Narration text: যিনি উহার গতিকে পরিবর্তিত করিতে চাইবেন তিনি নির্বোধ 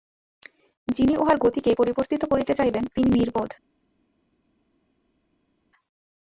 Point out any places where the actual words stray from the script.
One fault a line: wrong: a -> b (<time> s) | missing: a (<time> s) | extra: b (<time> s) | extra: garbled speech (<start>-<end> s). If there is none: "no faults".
no faults